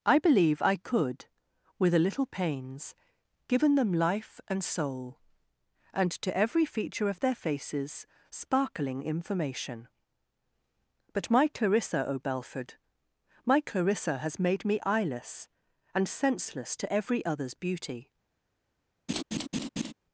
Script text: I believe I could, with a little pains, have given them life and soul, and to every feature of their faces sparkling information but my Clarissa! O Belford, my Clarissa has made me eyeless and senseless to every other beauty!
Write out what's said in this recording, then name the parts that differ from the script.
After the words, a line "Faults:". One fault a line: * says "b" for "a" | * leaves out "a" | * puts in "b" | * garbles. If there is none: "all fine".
I believe I could, with a little pains, given them life and soul, and to every feature of their faces sparkling information but my Clarissa! O Belford, my Clarissa has made me eyeless and senseless to every others beauty!
Faults:
* leaves out "have"
* says "others" for "other"